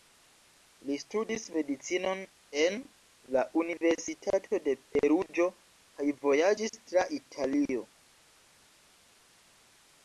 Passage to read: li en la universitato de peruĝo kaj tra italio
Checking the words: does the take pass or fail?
fail